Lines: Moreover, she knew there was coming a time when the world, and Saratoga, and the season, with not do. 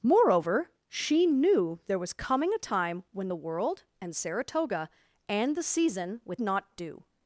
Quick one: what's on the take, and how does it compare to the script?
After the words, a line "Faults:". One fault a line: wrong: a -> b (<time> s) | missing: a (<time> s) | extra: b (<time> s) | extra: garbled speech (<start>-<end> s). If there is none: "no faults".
Moreover, she knew there was coming a time when the world, and Saratoga, and the season, with not do.
Faults:
no faults